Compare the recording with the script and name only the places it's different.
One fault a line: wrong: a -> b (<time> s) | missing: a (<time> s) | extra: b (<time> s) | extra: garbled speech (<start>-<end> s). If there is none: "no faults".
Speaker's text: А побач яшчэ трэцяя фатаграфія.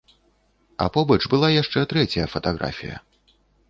extra: была (1.4 s)